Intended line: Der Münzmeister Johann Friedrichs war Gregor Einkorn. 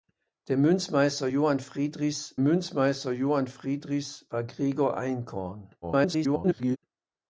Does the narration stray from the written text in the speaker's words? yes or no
yes